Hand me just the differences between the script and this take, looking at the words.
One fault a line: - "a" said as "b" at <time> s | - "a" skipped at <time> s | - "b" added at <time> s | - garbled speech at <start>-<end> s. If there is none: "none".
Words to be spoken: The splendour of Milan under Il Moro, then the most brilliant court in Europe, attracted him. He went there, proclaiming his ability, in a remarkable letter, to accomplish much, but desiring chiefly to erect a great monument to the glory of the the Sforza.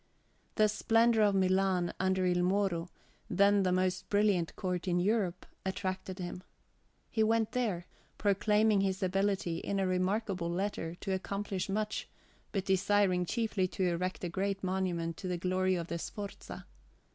- "the" skipped at 16.0 s